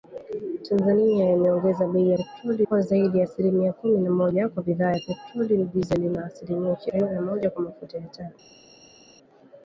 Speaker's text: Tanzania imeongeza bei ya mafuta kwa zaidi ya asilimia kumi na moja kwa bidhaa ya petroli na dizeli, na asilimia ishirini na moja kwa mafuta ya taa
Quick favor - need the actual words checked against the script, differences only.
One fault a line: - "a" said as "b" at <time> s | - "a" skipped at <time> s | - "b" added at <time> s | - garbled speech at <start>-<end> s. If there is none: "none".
- "mafuta" said as "petroli" at 2.2 s